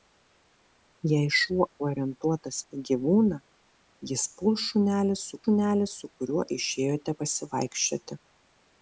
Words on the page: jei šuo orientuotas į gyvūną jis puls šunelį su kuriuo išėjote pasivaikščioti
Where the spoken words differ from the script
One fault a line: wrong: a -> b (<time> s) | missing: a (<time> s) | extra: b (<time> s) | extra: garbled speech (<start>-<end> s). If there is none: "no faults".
extra: šunelį su (5.4 s)